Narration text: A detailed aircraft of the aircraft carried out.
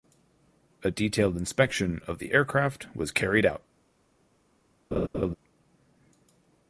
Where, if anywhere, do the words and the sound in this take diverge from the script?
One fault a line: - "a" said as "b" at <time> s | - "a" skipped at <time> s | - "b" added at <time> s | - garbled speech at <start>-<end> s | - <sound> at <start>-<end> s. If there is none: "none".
- "aircraft" said as "inspection" at 1.4 s
- "was" added at 2.9 s
- laugh at 4.9-5.3 s